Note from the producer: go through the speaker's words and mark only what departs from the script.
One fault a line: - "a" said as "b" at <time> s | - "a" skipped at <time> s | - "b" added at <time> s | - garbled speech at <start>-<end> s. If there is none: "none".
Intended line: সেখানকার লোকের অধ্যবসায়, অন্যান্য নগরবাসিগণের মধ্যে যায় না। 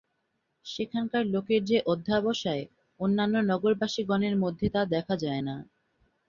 - "যে" added at 1.6 s
- "তা দেখা" added at 4.7 s